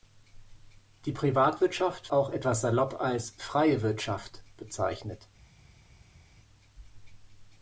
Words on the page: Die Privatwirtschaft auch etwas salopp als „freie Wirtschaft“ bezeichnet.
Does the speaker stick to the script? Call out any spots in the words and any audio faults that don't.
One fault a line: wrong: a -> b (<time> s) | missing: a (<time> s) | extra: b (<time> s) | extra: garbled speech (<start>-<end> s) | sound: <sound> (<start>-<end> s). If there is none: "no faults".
no faults